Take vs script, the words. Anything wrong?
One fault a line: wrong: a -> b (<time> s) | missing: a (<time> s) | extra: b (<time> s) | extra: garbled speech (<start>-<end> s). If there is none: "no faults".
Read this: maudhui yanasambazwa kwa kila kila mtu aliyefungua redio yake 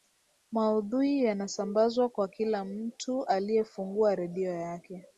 missing: kila (2.6 s)